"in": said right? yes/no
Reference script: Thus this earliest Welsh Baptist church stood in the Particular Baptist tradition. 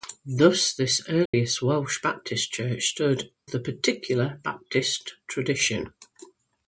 no